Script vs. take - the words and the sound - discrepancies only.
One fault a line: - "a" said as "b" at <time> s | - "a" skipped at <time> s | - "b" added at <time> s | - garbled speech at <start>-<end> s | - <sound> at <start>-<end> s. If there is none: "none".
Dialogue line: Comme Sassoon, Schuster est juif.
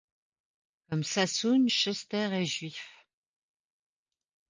none